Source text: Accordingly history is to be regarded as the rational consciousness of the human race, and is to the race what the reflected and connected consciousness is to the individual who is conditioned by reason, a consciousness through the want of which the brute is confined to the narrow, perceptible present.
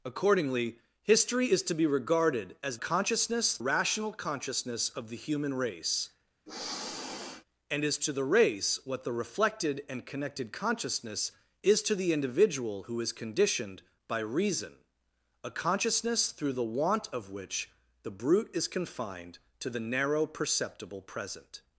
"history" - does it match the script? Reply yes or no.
yes